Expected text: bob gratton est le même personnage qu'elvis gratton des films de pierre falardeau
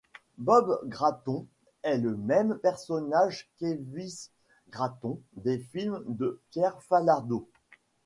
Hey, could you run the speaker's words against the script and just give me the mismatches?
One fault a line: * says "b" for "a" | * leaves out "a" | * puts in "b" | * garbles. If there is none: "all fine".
all fine